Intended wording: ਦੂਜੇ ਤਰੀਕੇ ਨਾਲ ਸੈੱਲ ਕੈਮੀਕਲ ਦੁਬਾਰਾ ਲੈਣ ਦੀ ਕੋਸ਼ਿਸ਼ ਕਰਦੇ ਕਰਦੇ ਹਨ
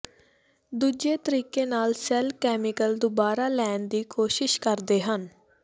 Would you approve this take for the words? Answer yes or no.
no